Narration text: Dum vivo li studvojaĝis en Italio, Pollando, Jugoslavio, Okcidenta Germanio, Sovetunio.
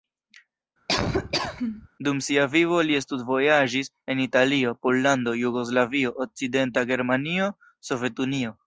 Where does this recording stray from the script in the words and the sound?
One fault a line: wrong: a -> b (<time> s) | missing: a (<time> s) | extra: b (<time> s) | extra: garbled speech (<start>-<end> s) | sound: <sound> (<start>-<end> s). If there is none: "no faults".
sound: laugh (0.9-1.9 s)
extra: sia (2.3 s)